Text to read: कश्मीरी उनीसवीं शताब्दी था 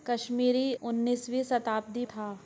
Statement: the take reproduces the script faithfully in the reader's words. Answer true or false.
true